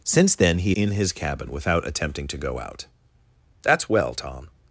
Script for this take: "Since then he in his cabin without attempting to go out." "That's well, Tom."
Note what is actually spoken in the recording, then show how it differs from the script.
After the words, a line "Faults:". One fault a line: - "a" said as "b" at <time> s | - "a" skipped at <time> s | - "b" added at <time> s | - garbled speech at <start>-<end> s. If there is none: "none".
"Since then he in his cabin without attempting to go out." "That's well, Tom."
Faults:
none